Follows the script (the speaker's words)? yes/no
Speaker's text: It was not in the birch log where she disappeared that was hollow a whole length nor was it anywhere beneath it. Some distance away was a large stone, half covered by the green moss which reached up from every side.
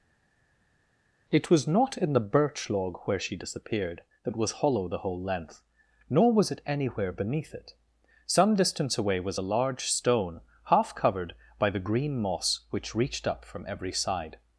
no